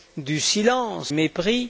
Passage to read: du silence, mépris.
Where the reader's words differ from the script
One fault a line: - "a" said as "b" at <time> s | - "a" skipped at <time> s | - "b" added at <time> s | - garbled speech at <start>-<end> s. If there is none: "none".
none